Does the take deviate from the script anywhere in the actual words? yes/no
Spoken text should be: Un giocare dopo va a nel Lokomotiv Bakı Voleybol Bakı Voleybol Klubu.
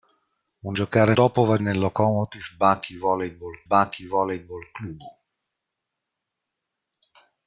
no